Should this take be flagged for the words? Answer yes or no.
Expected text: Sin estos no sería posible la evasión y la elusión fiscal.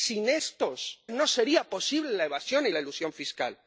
no